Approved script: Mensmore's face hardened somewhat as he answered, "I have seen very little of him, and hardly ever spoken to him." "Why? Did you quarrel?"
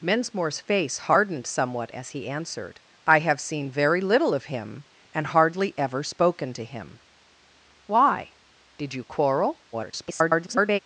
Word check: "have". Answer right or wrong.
right